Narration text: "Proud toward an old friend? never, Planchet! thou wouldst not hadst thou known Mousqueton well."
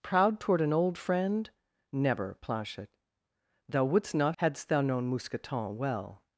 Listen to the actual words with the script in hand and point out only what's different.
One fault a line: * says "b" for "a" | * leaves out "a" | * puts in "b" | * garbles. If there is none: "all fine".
all fine